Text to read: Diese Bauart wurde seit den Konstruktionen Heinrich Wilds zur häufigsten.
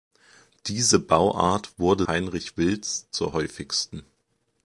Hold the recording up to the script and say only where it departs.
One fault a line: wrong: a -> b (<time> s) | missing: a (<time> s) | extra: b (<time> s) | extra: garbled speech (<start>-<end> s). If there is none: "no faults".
missing: seit den Konstruktionen (2.1 s)